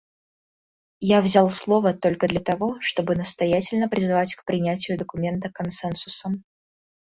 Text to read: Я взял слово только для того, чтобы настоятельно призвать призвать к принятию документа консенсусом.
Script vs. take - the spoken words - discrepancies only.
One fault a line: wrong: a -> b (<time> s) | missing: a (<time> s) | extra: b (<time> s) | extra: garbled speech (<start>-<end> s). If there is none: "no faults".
missing: призвать (4.3 s)